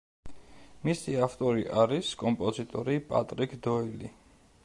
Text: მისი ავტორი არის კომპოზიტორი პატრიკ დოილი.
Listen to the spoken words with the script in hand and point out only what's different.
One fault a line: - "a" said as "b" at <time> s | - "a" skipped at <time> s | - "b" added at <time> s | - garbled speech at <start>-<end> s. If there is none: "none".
none